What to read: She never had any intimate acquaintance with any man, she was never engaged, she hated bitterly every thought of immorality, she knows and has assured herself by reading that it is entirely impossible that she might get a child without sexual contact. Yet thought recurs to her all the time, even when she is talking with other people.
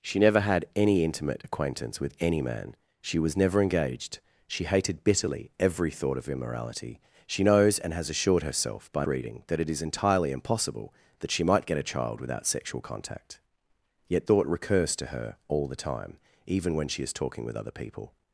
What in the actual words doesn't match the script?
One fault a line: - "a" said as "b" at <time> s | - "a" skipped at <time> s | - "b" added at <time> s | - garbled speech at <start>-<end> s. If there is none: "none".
none